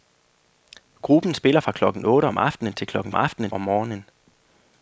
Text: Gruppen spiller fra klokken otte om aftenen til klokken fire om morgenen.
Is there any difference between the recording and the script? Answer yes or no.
yes